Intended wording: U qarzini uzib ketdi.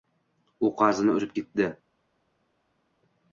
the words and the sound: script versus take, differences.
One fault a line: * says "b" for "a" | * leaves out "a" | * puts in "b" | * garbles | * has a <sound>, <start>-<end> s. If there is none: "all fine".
all fine